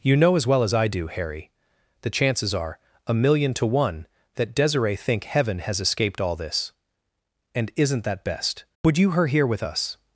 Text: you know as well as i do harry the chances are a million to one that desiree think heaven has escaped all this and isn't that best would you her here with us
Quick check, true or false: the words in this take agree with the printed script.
true